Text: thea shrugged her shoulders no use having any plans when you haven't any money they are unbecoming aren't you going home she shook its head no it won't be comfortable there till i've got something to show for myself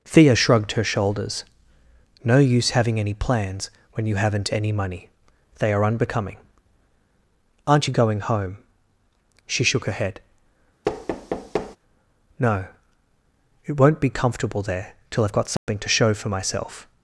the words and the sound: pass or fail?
fail